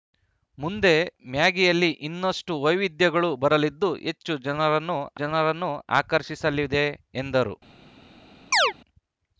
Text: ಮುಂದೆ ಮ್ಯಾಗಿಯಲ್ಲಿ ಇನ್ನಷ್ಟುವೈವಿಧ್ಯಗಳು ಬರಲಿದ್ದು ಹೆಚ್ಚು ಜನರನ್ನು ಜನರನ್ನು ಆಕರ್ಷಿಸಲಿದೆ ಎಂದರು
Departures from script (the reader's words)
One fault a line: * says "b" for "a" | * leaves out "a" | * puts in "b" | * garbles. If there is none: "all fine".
all fine